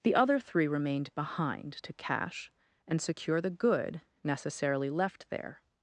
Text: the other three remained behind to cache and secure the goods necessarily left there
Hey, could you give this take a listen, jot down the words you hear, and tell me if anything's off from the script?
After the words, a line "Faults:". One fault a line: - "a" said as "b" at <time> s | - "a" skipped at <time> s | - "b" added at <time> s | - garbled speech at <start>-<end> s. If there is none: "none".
the other three remained behind to cache and secure the good necessarily left there
Faults:
- "goods" said as "good" at 3.5 s